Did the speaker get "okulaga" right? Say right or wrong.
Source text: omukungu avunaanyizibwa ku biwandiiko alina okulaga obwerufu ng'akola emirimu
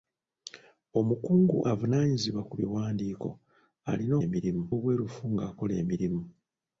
wrong